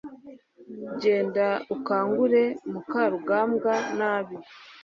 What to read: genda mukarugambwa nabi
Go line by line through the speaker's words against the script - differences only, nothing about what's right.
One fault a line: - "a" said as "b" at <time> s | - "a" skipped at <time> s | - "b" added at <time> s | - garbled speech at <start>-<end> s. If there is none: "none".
- "ukangure" added at 1.7 s